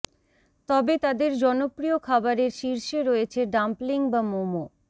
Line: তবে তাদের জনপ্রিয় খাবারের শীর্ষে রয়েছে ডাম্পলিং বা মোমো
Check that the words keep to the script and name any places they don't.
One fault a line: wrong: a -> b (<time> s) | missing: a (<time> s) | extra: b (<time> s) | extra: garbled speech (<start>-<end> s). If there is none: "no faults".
no faults